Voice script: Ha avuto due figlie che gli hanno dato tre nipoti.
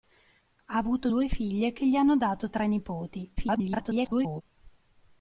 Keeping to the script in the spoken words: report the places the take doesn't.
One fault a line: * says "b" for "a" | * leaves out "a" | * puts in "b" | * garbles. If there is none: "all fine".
* garbles